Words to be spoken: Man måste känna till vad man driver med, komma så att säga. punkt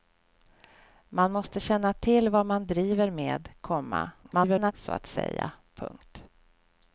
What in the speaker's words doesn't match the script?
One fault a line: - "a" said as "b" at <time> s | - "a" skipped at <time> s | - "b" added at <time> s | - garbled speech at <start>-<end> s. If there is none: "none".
- garbled speech at 4.2-4.7 s